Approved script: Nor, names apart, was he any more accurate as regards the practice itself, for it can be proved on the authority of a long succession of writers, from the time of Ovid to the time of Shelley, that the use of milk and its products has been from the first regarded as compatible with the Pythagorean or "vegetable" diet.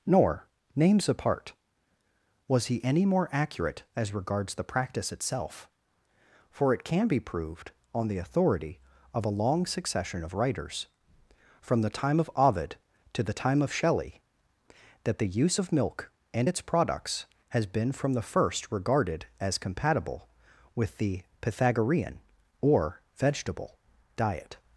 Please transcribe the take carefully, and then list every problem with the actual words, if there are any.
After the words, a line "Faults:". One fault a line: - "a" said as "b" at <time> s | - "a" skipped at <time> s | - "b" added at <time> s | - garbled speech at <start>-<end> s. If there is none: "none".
Nor, names apart, was he any more accurate as regards the practice itself, for it can be proved on the authority of a long succession of writers, from the time of Ovid to the time of Shelley, that the use of milk and its products has been from the first regarded as compatible with the Pythagorean or "vegetable" diet.
Faults:
none